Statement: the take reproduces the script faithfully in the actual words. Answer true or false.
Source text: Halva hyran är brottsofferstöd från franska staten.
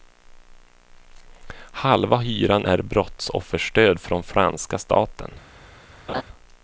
true